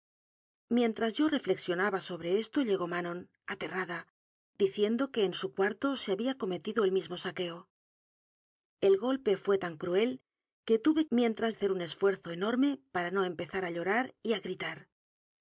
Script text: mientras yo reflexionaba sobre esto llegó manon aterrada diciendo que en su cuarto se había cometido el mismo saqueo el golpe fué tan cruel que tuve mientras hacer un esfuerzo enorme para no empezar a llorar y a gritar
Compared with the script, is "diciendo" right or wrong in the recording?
right